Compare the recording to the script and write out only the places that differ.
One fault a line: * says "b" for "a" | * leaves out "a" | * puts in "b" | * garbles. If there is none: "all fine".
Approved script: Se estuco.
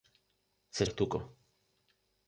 all fine